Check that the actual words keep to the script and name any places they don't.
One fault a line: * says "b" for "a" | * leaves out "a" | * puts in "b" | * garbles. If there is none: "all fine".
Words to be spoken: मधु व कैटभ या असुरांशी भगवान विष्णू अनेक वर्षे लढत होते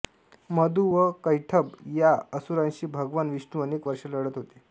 all fine